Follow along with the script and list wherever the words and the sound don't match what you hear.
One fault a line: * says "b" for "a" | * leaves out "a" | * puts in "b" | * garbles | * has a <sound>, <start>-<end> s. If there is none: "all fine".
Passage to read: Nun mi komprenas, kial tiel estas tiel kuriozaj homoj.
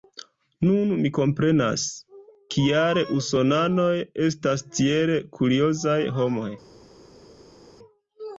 * says "usonanoj" for "tiel"